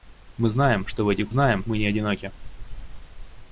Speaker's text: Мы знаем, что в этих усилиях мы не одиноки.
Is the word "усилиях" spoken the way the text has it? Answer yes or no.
no